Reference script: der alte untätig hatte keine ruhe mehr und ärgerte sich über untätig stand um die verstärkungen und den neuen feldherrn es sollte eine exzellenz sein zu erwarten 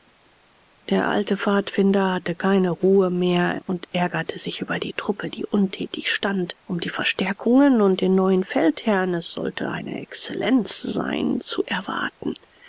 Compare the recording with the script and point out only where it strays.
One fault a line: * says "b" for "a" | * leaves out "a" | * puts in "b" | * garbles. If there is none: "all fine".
* says "pfadfinder" for "untätig"
* puts in "die truppe die"